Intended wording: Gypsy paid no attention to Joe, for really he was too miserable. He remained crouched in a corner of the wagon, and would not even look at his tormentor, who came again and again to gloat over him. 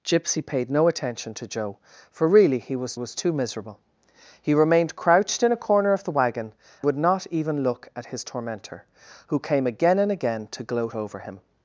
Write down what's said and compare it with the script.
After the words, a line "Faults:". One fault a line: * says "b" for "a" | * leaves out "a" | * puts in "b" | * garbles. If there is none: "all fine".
Gypsy paid no attention to Joe, for really he was was too miserable. He remained crouched in a corner of the wagon, would not even look at his tormentor, who came again and again to gloat over him.
Faults:
* puts in "was"
* leaves out "and"